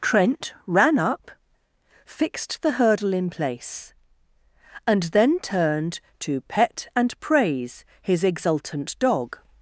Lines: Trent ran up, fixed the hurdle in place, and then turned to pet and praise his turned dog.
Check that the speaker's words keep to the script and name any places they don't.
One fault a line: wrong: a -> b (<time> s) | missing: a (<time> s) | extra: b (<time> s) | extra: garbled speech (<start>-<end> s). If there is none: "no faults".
wrong: turned -> exultant (8.2 s)